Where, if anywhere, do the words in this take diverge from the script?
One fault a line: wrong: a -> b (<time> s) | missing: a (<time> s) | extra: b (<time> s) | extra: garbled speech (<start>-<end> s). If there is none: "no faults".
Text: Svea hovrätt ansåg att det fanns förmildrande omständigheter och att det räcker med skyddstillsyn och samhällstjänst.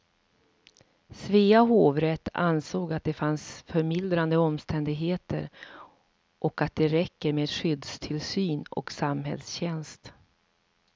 no faults